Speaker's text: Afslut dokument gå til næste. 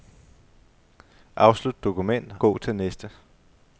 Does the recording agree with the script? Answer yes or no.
yes